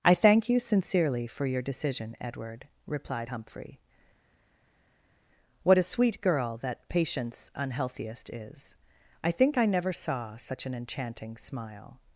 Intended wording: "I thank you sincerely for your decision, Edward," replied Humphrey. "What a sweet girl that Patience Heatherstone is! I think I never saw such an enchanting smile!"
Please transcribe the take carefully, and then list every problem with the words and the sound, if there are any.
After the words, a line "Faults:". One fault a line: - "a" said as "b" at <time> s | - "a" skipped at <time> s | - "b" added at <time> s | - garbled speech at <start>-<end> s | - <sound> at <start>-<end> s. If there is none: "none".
"I thank you sincerely for your decision, Edward," replied Humphrey. "What a sweet girl that Patience Unhealthiest is! I think I never saw such an enchanting smile!"
Faults:
- "Heatherstone" said as "Unhealthiest" at 7.5 s